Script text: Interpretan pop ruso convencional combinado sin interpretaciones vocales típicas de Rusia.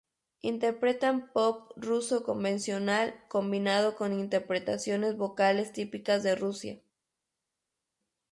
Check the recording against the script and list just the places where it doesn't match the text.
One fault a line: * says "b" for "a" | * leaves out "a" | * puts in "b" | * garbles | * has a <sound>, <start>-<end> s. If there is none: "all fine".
* says "con" for "sin"